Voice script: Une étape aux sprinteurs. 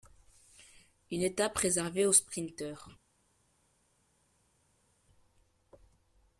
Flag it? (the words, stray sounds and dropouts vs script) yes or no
yes